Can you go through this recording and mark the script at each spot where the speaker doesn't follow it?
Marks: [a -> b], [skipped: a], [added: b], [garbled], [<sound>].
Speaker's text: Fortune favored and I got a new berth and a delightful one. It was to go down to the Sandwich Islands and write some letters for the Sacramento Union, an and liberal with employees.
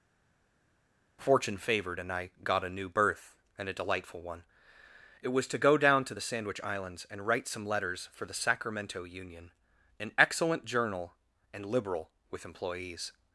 Fortune favored and I got a new berth and a delightful one. It was to go down to the Sandwich Islands and write some letters for the Sacramento Union, an [added: excellent journal] and liberal with employees.